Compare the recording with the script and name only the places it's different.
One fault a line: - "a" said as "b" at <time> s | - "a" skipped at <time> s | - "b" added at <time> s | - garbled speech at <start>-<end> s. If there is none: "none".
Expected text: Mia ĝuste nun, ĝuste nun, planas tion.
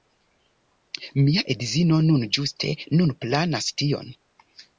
- "ĝuste" said as "edzino" at 1.6 s